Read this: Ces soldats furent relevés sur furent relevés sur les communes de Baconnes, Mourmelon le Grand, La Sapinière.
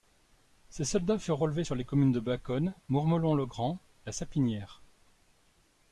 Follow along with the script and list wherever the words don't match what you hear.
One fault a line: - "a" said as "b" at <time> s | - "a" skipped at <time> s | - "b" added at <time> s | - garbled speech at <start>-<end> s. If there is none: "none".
- "furent relevés sur" skipped at 1.7 s